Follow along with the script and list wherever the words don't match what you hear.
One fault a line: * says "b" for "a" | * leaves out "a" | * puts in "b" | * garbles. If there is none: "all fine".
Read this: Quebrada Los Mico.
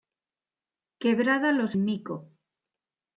all fine